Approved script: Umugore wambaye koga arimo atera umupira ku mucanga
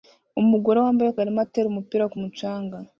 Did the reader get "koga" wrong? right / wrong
wrong